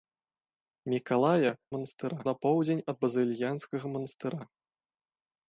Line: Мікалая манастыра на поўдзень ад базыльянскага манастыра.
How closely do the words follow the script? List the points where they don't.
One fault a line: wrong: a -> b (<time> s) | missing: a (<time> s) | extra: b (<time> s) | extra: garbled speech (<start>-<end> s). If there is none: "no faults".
no faults